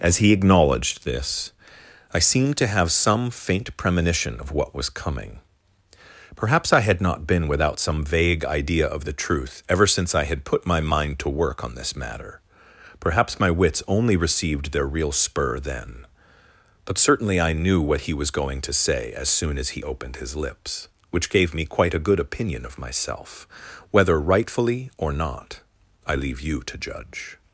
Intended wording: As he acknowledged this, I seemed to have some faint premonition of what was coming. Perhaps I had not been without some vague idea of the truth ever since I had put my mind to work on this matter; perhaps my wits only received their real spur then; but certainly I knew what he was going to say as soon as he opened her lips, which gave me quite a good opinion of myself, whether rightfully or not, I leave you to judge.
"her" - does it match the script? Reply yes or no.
no